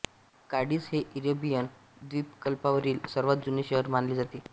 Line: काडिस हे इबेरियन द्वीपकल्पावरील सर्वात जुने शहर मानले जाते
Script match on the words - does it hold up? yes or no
yes